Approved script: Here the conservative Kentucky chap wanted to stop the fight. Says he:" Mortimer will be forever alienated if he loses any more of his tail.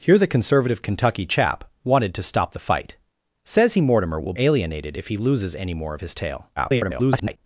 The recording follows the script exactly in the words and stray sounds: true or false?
false